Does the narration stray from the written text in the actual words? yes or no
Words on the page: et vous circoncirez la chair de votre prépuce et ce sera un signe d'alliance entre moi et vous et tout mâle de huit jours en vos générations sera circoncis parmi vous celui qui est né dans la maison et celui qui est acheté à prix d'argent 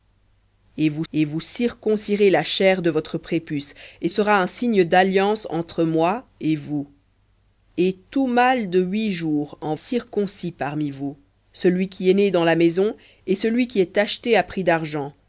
yes